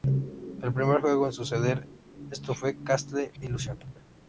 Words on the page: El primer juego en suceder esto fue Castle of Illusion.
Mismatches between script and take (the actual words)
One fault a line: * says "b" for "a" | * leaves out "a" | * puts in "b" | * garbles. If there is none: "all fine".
* leaves out "of"